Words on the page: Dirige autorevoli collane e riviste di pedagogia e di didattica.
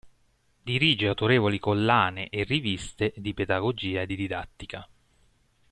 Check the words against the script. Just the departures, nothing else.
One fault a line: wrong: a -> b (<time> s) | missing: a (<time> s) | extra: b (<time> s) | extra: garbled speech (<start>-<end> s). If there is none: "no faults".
no faults